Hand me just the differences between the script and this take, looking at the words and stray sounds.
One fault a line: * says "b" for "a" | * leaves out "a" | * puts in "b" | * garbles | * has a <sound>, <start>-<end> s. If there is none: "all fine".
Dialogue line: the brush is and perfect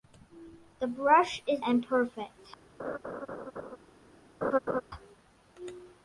* has a laugh, 2.8-3.8 s
* has a laugh, 4.4-4.8 s